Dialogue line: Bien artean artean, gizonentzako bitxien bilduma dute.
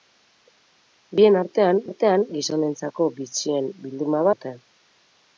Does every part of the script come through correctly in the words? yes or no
yes